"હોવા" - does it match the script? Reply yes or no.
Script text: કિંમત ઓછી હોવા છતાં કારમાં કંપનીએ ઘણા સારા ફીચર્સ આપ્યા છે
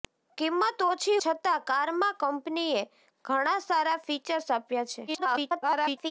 no